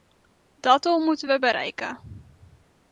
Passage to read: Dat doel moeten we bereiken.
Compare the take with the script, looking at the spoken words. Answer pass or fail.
pass